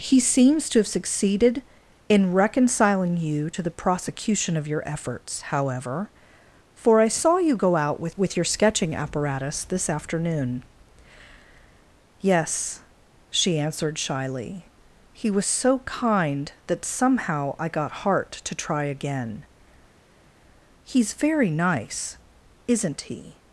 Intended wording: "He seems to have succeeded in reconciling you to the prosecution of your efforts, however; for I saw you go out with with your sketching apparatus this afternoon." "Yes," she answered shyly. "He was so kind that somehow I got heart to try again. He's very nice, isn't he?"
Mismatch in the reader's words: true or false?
false